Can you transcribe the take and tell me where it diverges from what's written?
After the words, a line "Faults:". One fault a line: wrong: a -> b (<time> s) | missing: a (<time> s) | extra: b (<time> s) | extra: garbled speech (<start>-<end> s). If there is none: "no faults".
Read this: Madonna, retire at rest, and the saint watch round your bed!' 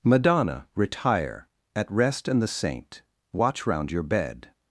Madonna, retire at rest, and the saint watch round your bed!'
Faults:
no faults